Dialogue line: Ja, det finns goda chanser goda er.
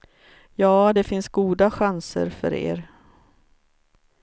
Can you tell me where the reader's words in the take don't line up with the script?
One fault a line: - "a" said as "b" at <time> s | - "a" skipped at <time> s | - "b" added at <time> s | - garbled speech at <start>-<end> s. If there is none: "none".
- "goda" said as "för" at 2.3 s